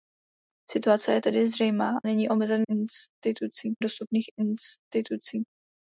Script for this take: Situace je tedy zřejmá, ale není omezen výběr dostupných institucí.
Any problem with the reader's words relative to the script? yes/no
yes